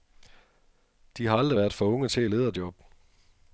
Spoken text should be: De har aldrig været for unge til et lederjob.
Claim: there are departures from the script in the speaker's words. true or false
false